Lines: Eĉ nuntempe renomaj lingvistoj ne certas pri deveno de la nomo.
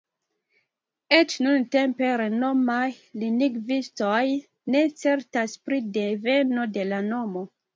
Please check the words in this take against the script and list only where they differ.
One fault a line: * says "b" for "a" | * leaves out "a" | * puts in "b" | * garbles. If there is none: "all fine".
all fine